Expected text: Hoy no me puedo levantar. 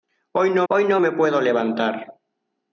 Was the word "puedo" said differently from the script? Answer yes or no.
no